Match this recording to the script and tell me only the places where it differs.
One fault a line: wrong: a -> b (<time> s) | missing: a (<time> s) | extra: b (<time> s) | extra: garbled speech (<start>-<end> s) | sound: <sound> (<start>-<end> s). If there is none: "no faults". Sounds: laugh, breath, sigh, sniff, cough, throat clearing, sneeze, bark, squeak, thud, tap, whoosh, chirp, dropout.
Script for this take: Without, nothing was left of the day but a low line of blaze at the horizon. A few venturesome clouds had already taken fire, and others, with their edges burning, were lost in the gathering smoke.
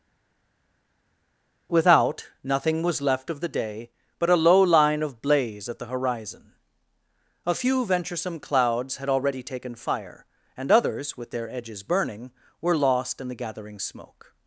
no faults